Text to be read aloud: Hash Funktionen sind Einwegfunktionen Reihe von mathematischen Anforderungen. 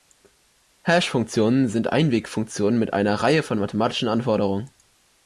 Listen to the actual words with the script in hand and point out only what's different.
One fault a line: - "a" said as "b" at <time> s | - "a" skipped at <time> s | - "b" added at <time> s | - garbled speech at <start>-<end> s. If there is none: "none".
- "mit einer" added at 2.8 s